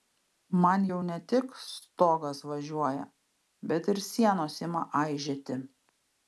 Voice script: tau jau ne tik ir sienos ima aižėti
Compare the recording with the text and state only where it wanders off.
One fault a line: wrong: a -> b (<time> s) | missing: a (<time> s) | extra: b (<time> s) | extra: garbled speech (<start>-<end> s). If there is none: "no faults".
wrong: tau -> man (0.6 s)
extra: stogas važiuoja bet (1.7 s)